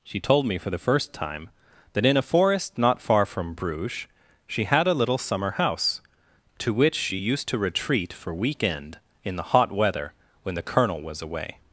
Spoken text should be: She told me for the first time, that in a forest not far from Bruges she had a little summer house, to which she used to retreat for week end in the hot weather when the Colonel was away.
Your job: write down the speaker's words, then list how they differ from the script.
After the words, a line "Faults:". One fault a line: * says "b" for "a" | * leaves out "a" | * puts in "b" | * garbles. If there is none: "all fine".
She told me for the first time, that in a forest not far from Bruges she had a little summer house, to which she used to retreat for week end in the hot weather when the Colonel was away.
Faults:
all fine